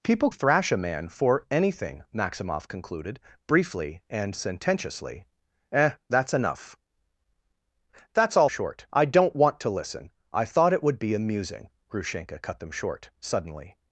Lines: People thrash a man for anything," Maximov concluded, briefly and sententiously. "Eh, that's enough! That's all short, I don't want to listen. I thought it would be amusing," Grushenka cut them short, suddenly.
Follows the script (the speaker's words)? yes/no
yes